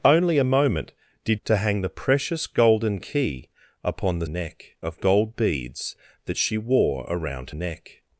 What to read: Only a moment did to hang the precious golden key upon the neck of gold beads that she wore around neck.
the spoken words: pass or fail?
pass